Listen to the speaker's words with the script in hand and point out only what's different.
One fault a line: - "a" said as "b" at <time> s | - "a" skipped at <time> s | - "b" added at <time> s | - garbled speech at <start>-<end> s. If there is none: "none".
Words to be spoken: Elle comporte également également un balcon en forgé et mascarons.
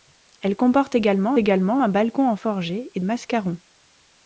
none